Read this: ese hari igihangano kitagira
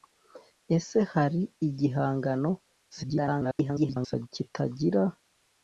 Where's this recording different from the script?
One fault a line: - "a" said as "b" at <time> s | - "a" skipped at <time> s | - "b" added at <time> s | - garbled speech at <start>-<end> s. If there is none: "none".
- garbled speech at 2.9-4.3 s